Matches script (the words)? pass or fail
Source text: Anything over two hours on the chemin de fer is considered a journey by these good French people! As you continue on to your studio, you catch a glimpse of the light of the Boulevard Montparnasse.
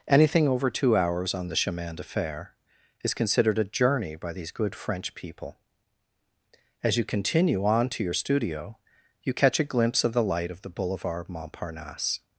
pass